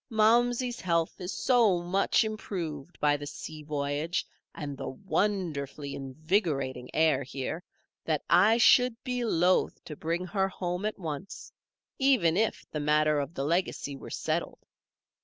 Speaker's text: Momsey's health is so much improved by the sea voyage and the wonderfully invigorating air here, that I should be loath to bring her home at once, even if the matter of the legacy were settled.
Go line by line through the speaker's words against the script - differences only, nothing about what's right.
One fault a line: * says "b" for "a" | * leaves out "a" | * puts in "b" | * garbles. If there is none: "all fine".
all fine